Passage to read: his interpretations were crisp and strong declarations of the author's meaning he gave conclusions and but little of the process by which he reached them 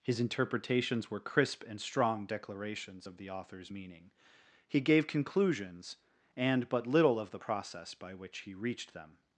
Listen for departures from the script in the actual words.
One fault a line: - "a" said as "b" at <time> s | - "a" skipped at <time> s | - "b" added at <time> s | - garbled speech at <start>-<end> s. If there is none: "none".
none